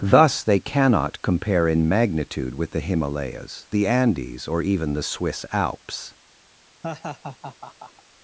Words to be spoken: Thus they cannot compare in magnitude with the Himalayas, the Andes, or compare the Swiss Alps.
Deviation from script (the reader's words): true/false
true